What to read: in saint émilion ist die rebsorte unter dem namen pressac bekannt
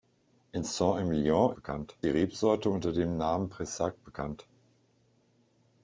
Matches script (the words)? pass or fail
fail